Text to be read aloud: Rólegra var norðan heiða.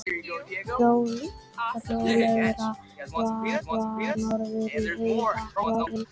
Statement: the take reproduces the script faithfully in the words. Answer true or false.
false